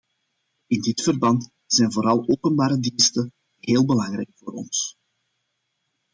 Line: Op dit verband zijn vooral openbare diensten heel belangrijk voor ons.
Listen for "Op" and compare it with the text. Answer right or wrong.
wrong